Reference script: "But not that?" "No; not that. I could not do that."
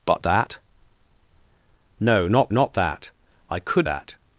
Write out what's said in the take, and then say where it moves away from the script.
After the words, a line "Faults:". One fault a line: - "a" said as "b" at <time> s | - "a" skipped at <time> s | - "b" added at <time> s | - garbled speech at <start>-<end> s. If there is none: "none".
"But that?" "No; not not that. I could that."
Faults:
- "not" skipped at 0.2 s
- "not" added at 2.5 s
- "not do" skipped at 3.9 s